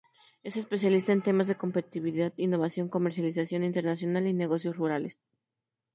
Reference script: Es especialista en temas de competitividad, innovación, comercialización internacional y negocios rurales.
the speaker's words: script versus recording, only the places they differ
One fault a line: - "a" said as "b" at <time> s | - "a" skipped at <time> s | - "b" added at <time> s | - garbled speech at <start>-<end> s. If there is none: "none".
none